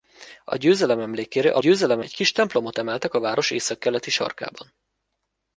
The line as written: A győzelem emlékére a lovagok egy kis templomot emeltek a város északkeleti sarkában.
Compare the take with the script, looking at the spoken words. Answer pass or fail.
fail